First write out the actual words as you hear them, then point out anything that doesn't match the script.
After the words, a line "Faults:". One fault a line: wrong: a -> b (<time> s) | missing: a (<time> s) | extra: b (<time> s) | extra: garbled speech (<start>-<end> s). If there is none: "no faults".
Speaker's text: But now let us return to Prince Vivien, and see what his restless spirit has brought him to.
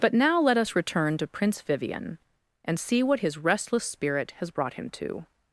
But now let us return to Prince Vivien, and see what his restless spirit has brought him to.
Faults:
no faults